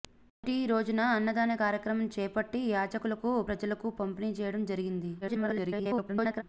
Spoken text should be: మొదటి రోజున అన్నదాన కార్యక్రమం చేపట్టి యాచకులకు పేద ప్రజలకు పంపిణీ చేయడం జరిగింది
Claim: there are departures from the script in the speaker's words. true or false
true